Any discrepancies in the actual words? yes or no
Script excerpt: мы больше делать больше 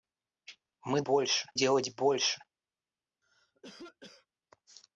no